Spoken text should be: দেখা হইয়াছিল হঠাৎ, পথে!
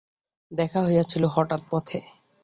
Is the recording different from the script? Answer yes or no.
no